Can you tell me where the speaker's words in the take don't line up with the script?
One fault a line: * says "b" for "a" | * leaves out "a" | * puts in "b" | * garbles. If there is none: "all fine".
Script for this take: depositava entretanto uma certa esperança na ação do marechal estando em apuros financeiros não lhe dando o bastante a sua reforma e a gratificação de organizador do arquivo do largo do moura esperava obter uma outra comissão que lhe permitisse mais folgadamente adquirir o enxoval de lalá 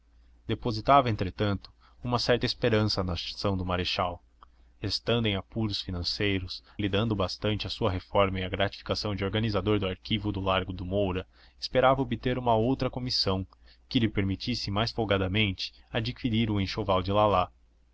* leaves out "não"